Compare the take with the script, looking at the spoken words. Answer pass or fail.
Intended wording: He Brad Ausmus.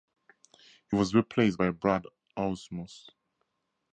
fail